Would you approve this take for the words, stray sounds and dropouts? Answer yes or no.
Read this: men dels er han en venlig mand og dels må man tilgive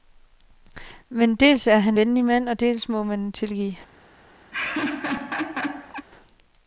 no